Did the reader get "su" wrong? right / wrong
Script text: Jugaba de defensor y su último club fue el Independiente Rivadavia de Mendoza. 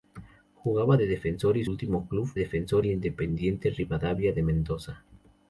wrong